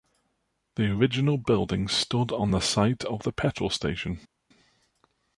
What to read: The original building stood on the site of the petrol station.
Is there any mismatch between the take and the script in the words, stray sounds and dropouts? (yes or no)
no